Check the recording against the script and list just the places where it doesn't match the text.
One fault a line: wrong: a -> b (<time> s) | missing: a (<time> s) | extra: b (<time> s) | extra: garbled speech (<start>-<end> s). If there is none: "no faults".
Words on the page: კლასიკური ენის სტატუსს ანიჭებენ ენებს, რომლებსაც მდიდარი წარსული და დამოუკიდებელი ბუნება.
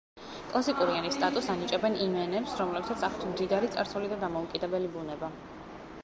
extra: იმ (2.0 s)
extra: აქვთ (3.1 s)